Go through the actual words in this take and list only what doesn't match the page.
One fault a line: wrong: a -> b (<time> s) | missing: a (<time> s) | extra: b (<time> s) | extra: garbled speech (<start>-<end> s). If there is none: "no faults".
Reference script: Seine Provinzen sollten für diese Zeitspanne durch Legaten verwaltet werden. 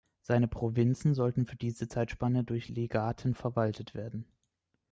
no faults